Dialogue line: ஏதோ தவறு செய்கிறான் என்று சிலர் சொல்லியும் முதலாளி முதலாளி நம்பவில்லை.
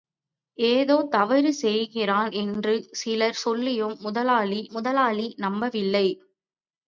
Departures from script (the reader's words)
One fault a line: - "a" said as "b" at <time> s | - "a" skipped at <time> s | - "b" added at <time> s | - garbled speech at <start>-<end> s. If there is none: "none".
none